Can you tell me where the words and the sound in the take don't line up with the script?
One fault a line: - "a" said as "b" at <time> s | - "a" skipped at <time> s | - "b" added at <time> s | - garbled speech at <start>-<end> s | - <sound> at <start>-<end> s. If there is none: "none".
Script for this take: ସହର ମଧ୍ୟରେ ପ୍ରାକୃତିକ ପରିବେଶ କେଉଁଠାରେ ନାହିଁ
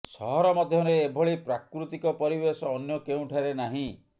- "ଏଭଳି" added at 1.0 s
- "ଅନ୍ୟ" added at 2.7 s